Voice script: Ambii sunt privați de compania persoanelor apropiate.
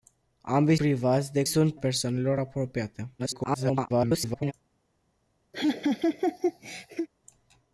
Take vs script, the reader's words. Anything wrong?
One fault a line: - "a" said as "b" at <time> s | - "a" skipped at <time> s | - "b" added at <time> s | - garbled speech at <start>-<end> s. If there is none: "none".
- "sunt" skipped at 0.8 s
- "compania" said as "sunt" at 1.4 s
- garbled speech at 3.2-4.5 s